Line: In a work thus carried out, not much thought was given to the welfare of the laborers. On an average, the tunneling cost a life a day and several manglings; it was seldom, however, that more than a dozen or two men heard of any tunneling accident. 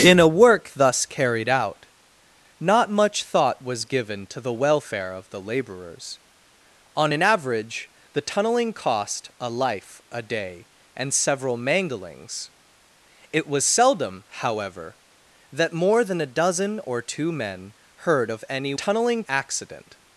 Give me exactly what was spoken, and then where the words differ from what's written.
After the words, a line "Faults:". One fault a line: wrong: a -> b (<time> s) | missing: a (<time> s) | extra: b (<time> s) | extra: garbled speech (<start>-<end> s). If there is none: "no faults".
In a work thus carried out, not much thought was given to the welfare of the laborers. On an average, the tunneling cost a life a day and several manglings; it was seldom, however, that more than a dozen or two men heard of any tunneling accident.
Faults:
no faults